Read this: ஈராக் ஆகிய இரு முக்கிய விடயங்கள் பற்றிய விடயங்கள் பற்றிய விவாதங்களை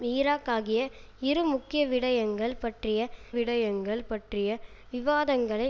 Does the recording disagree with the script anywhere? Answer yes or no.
no